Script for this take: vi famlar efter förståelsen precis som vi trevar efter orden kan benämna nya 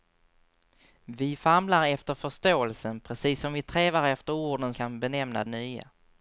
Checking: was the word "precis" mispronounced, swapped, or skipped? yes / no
no